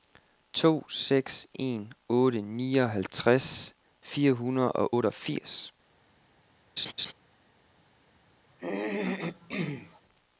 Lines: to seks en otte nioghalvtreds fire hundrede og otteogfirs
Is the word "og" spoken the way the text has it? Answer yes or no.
yes